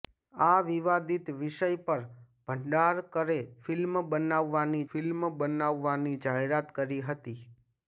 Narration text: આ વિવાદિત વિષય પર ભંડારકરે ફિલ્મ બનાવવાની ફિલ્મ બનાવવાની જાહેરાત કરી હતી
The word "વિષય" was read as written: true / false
true